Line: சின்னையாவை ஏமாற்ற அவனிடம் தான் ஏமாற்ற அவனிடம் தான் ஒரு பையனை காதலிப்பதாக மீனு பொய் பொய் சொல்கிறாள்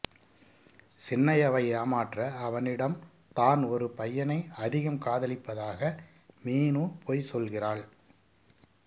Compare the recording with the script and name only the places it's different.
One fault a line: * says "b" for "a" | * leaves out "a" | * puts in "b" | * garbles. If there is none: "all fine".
* leaves out "ஏமாற்ற அவனிடம் தான்"
* puts in "அதிகம்"
* leaves out "பொய்"